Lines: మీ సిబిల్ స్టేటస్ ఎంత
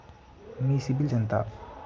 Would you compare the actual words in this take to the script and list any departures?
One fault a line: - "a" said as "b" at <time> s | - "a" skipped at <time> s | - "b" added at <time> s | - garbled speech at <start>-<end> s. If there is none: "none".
- "స్టేటస్" skipped at 1.1 s